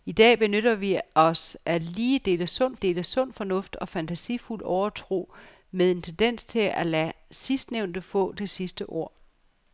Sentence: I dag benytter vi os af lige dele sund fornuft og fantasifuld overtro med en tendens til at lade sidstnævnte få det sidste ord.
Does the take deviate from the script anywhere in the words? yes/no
yes